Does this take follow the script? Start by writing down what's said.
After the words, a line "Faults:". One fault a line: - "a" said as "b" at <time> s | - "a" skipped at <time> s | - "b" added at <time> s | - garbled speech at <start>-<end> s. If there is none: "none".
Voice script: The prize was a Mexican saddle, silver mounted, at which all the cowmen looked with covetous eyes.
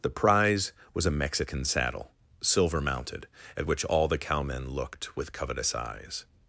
The prize was a Mexican saddle, silver mounted, at which all the cowmen looked with covetous eyes.
Faults:
none